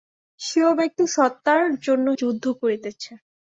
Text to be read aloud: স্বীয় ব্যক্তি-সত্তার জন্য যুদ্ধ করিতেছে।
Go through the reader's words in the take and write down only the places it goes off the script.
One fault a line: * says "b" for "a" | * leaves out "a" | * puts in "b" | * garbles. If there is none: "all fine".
all fine